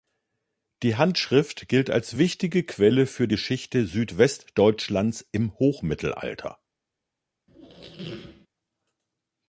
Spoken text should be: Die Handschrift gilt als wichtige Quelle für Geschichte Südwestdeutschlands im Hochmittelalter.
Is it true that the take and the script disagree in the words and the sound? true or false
true